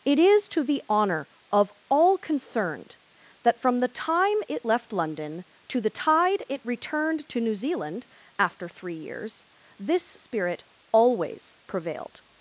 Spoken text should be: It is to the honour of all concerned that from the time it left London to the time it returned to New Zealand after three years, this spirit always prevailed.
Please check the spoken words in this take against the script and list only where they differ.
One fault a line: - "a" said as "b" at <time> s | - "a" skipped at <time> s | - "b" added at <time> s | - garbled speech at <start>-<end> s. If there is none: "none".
- "time" said as "tide" at 5.9 s